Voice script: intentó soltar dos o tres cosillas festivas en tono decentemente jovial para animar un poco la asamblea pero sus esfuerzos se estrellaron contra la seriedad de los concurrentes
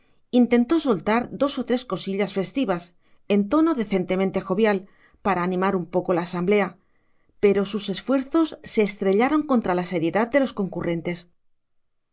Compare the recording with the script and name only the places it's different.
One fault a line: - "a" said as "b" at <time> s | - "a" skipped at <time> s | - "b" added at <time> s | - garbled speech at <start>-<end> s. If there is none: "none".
none